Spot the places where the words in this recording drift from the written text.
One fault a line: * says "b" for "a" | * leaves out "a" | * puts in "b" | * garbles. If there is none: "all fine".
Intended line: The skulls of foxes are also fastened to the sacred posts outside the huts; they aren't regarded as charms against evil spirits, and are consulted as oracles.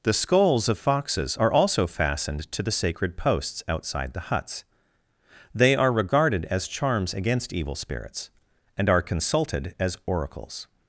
* says "are" for "aren't"